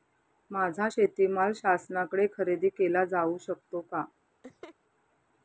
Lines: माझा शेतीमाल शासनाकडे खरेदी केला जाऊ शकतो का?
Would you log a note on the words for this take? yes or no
no